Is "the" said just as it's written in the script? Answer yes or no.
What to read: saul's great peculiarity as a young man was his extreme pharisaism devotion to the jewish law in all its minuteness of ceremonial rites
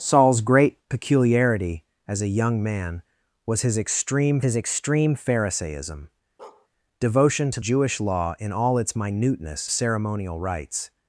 no